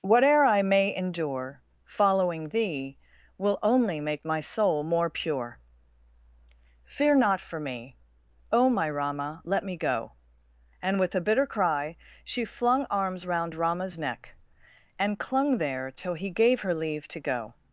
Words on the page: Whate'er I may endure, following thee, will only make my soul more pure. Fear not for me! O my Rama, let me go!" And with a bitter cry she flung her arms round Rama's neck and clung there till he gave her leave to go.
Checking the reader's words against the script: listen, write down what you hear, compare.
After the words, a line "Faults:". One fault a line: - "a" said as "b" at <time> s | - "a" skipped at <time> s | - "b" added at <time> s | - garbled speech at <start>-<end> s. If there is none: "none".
Whate'er I may endure, following thee, will only make my soul more pure. Fear not for me! O my Rama, let me go!" And with a bitter cry she flung arms round Rama's neck and clung there till he gave her leave to go.
Faults:
- "her" skipped at 12.8 s